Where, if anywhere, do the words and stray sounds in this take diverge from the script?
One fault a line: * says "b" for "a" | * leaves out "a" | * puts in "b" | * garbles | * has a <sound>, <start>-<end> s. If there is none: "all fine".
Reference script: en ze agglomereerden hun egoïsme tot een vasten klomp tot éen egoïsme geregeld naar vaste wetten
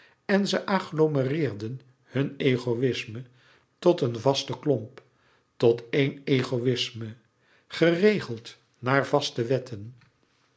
all fine